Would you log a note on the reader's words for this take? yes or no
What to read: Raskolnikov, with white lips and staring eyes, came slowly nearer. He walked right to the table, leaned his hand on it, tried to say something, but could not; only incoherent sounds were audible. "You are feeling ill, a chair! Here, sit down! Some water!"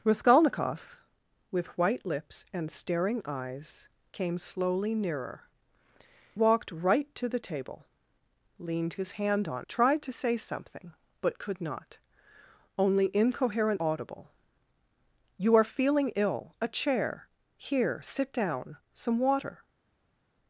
yes